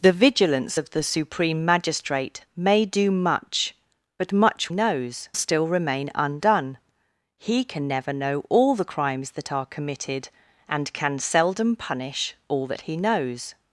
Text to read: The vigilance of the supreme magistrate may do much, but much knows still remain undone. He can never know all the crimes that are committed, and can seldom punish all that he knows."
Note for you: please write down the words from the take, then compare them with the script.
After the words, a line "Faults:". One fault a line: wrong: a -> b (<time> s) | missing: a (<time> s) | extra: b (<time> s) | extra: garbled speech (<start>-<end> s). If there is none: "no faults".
The vigilance of the supreme magistrate may do much, but much knows still remain undone. He can never know all the crimes that are committed, and can seldom punish all that he knows."
Faults:
no faults